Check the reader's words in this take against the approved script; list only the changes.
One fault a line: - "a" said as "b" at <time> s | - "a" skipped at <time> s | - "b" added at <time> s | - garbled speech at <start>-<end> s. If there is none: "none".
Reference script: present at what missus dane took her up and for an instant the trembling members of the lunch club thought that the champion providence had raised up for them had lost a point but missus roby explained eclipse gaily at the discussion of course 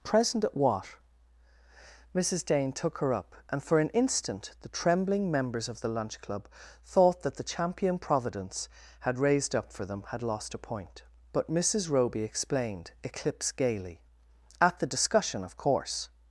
none